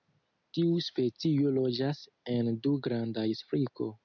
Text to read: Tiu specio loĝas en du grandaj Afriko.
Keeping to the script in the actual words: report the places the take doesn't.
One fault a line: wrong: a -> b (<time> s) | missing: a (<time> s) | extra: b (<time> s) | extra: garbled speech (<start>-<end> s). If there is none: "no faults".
no faults